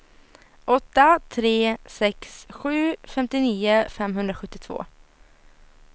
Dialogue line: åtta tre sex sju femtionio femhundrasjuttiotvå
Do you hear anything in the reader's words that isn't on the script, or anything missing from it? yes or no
no